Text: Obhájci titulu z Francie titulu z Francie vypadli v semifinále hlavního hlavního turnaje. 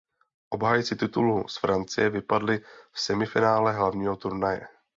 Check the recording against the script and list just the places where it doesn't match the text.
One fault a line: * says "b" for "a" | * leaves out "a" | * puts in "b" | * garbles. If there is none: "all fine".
* leaves out "titulu z Francie"
* leaves out "hlavního"